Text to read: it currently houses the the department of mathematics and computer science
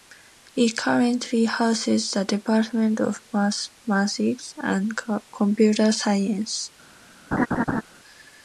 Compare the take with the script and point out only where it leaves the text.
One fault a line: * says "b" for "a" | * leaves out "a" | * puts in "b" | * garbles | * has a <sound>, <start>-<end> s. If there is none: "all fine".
* leaves out "the"
* has a laugh, 7.3-7.8 s